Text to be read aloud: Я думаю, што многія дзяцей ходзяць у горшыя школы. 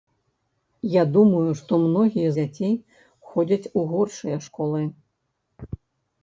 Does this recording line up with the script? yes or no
yes